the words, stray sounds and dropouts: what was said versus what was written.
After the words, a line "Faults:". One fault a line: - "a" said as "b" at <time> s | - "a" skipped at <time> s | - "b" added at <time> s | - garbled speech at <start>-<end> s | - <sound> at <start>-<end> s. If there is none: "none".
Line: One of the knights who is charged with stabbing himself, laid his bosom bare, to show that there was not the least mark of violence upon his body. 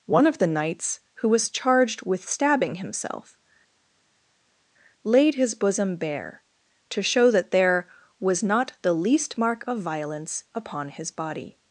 One of the knights who was charged with stabbing himself, laid his bosom bare, to show that there was not the least mark of violence upon his body.
Faults:
- "is" said as "was" at 1.3 s